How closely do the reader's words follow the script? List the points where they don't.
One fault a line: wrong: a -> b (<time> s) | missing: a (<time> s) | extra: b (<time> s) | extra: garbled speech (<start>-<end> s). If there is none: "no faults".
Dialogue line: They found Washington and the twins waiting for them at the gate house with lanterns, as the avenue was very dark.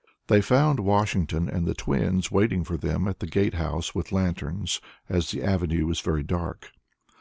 no faults